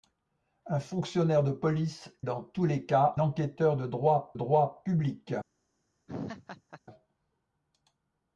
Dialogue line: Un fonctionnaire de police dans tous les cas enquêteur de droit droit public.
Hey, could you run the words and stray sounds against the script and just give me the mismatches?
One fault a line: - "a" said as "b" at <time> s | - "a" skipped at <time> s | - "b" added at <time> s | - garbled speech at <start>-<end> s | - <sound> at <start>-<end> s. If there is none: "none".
- laugh at 6.1-6.8 s